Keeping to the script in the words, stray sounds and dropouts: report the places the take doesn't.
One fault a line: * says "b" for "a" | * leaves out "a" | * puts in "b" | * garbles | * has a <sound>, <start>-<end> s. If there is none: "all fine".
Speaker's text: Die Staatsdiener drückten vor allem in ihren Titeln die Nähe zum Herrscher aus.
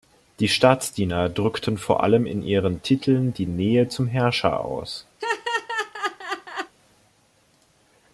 * has a laugh, 5.2-6.7 s